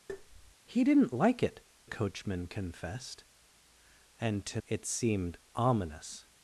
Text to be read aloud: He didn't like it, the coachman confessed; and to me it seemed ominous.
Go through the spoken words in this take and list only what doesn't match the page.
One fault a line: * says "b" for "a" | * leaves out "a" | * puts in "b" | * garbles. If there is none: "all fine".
* leaves out "the"
* leaves out "me"